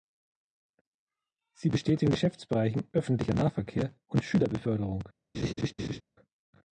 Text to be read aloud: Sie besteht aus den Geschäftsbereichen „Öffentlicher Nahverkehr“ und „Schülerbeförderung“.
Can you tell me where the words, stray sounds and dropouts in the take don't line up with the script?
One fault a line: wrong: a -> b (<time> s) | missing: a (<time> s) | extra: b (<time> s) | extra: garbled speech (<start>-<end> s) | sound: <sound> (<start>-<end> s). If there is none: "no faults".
missing: aus (2.0 s)
sound: laugh (5.3-6.0 s)